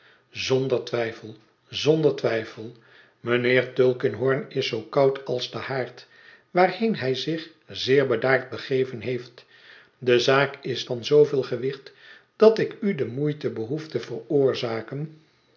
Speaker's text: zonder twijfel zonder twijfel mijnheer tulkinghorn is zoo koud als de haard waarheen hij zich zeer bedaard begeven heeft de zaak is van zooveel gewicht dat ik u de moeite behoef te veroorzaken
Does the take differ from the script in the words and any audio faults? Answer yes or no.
no